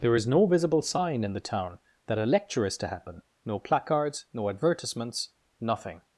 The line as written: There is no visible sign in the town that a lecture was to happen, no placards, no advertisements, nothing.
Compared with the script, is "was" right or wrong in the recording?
wrong